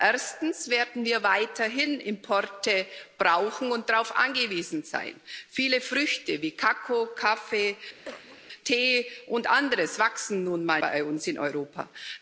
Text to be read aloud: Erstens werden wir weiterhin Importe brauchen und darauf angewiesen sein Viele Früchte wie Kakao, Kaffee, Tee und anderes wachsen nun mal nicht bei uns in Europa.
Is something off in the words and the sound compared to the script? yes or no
yes